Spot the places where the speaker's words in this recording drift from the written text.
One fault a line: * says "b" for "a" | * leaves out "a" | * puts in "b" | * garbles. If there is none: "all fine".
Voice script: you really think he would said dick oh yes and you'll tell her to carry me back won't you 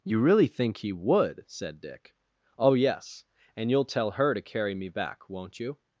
all fine